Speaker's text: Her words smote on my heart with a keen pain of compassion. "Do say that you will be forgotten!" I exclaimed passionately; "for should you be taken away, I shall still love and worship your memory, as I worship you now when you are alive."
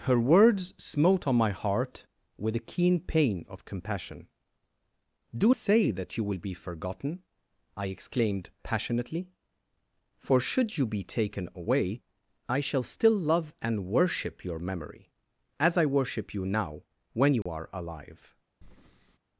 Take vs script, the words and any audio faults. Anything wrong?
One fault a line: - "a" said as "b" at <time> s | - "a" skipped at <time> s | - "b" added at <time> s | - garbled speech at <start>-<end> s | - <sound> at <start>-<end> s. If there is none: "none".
- dropout at 17.4-17.5 s
- breath at 18.6-19.2 s